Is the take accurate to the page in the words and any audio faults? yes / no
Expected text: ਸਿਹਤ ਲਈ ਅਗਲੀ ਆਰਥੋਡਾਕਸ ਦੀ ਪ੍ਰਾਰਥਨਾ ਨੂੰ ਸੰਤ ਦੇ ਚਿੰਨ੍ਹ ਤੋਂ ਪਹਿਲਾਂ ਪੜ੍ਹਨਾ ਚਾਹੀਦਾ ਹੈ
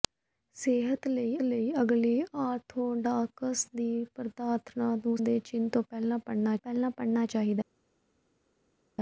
no